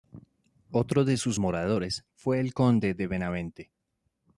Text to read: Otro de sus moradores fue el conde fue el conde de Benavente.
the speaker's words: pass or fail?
fail